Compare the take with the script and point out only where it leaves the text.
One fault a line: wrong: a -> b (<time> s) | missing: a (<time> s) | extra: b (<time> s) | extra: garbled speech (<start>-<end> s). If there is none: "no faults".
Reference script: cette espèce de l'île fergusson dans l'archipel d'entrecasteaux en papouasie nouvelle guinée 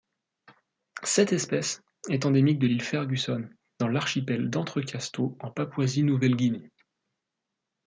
extra: est endémique (2.1 s)